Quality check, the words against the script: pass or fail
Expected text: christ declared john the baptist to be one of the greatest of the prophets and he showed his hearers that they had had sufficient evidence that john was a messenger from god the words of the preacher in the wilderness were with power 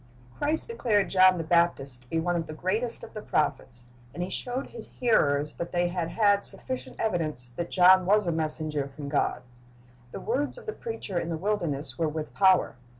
pass